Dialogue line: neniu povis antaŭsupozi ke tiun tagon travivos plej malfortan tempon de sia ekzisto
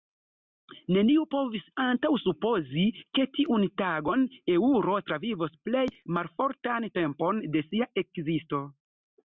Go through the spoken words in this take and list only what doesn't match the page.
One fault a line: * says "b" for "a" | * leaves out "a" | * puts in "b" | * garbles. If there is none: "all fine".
* puts in "eŭro"